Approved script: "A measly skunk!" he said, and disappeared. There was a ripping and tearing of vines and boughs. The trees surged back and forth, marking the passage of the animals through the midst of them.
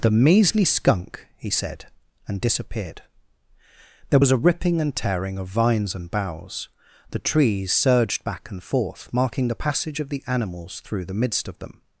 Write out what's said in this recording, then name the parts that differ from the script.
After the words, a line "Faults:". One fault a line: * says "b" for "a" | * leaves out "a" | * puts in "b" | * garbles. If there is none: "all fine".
"The measly skunk!" he said, and disappeared. There was a ripping and tearing of vines and boughs. The trees surged back and forth, marking the passage of the animals through the midst of them.
Faults:
* says "The" for "A"